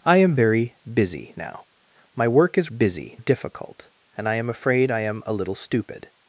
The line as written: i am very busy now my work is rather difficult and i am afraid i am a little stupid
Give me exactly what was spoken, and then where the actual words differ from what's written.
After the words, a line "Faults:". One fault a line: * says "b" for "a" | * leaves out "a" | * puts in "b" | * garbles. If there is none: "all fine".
i am very busy now my work is busy difficult and i am afraid i am a little stupid
Faults:
* says "busy" for "rather"